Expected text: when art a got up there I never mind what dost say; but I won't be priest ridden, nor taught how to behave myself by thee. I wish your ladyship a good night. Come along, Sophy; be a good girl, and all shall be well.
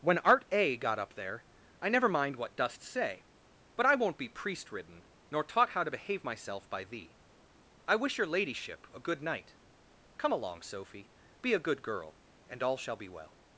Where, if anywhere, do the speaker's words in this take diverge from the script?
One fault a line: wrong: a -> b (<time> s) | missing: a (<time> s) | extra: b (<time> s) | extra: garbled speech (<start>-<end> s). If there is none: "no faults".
no faults